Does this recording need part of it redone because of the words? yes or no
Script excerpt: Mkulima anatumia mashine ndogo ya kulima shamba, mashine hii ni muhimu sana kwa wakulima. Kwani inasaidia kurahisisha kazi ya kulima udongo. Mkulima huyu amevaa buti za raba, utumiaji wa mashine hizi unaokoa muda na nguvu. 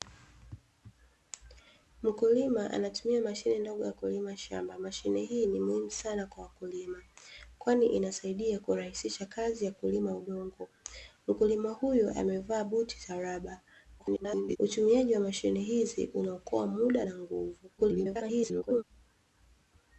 yes